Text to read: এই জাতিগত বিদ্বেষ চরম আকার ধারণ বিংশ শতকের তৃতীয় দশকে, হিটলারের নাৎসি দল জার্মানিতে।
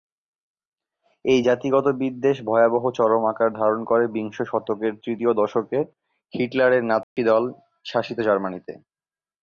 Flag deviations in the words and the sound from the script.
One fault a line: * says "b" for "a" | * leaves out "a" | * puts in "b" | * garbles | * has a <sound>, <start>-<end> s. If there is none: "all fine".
* puts in "ভয়াবহ"
* puts in "করে"
* has a dropout, 7.0-7.2 s
* puts in "শাসিত"